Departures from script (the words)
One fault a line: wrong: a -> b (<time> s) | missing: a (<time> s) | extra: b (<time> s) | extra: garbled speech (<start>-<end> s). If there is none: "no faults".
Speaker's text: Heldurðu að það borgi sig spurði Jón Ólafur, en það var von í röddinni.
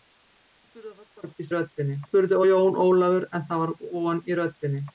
wrong: sig -> röddinni (1.5 s)